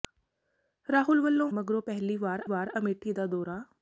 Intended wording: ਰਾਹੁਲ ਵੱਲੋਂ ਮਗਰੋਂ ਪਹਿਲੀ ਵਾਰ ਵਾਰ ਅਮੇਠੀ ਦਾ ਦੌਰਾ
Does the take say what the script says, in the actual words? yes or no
yes